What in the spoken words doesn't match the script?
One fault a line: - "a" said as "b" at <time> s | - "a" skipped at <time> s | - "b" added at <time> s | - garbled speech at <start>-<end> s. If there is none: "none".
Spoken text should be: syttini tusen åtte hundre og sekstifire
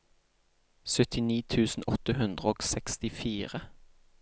none